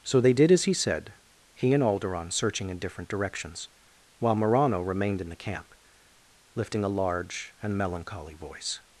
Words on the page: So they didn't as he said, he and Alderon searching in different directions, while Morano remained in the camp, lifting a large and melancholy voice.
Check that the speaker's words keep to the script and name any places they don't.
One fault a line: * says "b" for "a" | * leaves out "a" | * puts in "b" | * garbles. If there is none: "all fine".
* says "did" for "didn't"